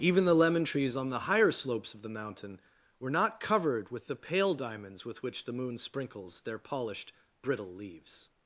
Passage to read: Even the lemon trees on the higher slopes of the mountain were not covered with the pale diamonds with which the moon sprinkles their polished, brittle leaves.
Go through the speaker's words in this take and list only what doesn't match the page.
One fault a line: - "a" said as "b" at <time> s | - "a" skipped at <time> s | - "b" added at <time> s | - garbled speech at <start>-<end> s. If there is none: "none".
none